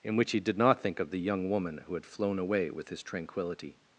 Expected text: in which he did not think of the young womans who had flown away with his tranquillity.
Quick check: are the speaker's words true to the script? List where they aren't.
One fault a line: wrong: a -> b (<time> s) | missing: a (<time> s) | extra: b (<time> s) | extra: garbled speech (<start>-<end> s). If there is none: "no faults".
wrong: womans -> woman (1.5 s)